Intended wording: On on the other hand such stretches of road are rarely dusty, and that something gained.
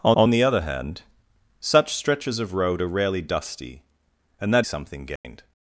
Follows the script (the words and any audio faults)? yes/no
no